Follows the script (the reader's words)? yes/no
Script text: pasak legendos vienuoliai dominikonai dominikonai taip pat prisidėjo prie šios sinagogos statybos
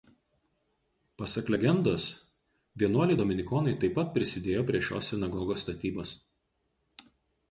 no